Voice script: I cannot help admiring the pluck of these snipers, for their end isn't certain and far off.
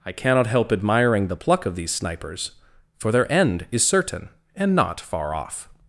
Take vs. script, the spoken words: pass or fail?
fail